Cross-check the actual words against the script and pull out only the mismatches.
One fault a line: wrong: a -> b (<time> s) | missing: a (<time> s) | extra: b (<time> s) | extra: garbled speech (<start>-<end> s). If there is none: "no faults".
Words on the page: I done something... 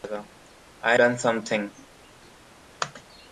no faults